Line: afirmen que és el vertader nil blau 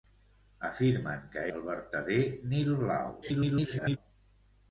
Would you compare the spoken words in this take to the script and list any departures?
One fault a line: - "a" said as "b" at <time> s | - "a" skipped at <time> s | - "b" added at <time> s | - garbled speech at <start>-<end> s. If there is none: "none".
- "és" skipped at 1.4 s
- garbled speech at 3.2-4.0 s